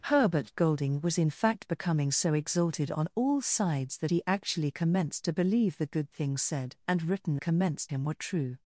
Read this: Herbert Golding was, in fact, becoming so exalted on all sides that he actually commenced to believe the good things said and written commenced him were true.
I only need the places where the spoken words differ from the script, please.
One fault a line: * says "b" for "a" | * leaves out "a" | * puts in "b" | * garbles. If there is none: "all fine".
all fine